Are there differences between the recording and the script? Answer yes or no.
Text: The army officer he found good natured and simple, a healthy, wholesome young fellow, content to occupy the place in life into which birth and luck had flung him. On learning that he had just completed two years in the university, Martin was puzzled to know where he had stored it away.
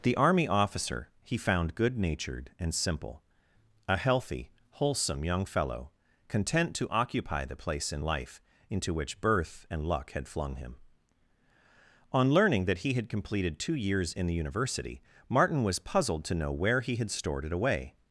yes